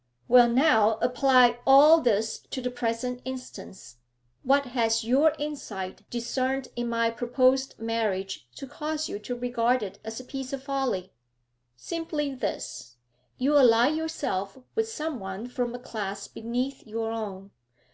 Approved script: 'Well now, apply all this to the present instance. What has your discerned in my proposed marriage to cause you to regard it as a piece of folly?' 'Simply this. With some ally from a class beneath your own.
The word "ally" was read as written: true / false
false